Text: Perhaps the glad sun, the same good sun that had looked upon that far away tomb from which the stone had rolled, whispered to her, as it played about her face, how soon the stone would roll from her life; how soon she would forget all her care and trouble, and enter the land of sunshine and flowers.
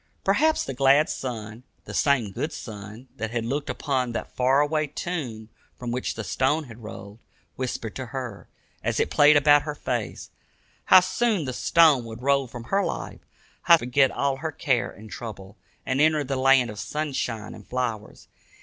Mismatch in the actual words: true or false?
true